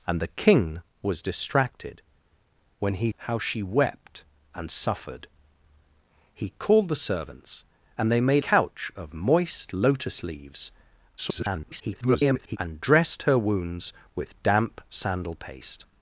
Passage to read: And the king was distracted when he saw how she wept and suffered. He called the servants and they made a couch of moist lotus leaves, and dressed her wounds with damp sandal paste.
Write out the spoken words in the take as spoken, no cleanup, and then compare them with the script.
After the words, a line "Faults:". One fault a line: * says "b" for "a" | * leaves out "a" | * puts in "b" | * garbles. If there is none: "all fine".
And the king was distracted when he how she wept and suffered. He called the servants and they made couch of moist lotus leaves, [garbled] and dressed her wounds with damp sandal paste.
Faults:
* leaves out "saw"
* leaves out "a"
* garbles